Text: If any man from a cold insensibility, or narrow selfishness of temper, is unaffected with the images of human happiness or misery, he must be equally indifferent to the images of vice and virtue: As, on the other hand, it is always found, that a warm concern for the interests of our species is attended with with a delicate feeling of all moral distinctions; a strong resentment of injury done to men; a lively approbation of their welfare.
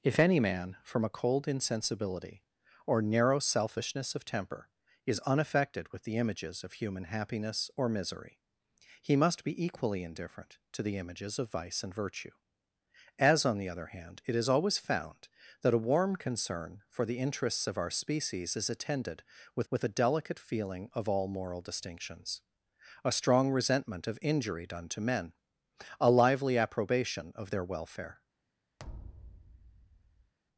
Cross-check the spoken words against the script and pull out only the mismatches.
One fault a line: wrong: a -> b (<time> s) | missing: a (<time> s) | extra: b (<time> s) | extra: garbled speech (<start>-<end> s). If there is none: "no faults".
no faults